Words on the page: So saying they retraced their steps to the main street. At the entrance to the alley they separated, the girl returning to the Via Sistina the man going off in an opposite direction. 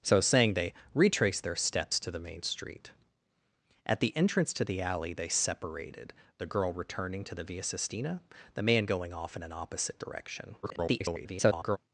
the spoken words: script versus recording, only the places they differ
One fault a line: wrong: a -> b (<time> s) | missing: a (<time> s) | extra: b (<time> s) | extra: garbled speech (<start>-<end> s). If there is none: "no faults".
extra: garbled speech (10.6-11.8 s)